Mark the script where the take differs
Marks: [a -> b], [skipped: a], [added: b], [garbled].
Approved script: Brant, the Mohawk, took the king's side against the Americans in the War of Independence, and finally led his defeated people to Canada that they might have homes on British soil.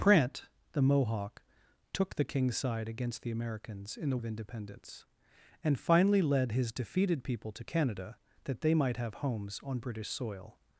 Brant, the Mohawk, took the king's side against the Americans in the [skipped: War] of Independence, and finally led his defeated people to Canada that they might have homes on British soil.